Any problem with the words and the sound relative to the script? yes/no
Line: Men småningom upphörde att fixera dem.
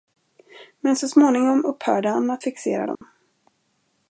yes